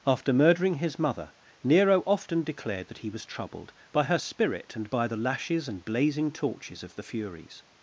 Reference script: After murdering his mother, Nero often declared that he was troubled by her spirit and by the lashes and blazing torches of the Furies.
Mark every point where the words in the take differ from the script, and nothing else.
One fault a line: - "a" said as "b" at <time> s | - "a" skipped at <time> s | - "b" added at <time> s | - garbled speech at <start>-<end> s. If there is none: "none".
none